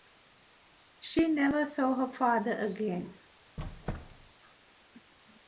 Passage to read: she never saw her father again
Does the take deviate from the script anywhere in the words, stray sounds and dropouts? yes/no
yes